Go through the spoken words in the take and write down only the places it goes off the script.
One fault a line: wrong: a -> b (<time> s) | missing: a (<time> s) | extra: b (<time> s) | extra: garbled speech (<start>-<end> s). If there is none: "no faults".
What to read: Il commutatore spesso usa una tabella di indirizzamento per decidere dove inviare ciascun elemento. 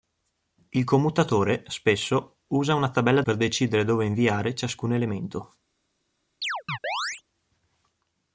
missing: di indirizzamento (3.2 s)